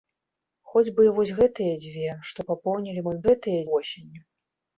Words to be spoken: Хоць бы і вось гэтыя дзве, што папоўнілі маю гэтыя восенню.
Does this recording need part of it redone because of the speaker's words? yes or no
no